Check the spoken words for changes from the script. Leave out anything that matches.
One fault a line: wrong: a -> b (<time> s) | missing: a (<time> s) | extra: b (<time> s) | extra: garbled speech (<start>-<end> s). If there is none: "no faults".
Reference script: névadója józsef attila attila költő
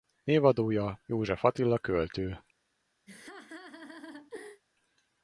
missing: attila (1.8 s)